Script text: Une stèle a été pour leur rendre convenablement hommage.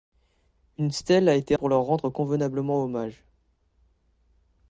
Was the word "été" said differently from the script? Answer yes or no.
no